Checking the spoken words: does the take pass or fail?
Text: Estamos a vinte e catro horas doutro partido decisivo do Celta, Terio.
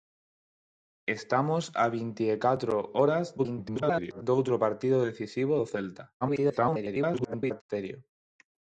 fail